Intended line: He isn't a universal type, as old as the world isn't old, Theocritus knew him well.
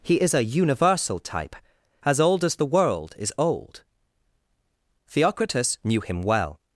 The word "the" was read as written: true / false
true